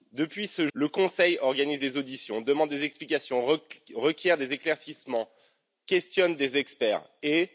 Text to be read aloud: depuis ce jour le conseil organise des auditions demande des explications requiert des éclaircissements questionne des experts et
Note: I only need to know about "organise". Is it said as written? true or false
true